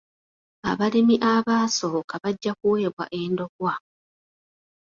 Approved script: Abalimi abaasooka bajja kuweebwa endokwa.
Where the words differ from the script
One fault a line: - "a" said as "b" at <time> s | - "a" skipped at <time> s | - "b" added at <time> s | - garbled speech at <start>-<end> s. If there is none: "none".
none